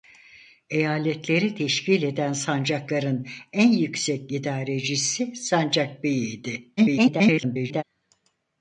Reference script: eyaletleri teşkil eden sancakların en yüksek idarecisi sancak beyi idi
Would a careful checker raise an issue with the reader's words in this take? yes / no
yes